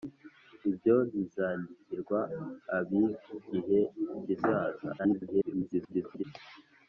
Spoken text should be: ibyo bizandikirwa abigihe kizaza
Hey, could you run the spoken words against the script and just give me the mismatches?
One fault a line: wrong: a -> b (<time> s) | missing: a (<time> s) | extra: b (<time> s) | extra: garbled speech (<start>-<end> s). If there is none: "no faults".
extra: garbled speech (5.0-6.2 s)